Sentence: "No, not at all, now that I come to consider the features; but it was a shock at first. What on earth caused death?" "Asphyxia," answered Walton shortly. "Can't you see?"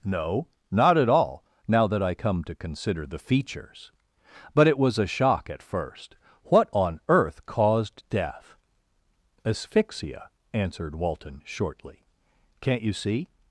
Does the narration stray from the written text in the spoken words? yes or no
no